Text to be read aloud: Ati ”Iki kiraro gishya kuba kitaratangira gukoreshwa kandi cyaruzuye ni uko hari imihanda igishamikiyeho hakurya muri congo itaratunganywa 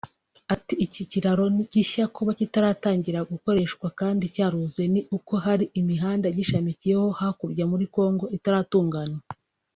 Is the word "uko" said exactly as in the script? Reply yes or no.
yes